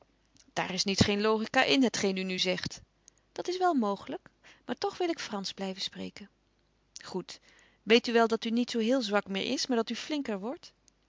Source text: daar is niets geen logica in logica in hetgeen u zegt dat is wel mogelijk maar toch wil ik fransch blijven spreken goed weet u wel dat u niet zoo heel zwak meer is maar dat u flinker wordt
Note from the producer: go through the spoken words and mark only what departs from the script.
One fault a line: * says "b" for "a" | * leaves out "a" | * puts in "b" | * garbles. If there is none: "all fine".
* leaves out "logica in"
* puts in "nu"